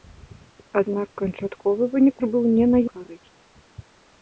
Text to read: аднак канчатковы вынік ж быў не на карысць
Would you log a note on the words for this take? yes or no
no